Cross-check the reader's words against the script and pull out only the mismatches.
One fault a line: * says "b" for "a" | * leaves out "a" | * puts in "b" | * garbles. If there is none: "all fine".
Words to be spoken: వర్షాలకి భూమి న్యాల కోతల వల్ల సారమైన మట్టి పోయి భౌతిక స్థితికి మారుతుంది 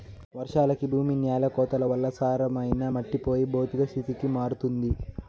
all fine